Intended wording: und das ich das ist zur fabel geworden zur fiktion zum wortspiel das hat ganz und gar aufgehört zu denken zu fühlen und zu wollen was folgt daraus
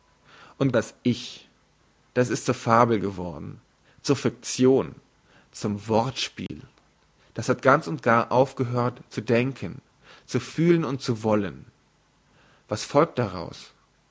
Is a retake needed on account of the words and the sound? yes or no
yes